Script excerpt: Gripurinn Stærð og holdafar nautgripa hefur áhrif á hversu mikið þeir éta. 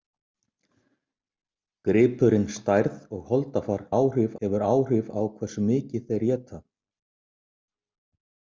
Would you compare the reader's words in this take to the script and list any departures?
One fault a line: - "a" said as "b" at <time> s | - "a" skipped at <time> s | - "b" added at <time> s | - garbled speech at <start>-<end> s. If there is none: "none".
- "nautgripa" said as "áhrif" at 4.0 s